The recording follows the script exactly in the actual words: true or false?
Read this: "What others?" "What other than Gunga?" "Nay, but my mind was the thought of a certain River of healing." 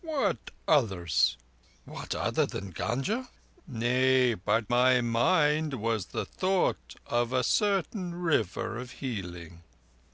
true